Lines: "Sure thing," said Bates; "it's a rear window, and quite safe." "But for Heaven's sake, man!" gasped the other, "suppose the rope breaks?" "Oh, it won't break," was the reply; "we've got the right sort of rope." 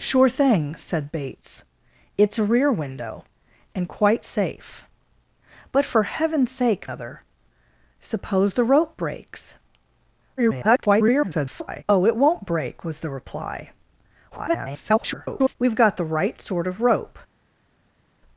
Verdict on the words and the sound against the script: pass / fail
fail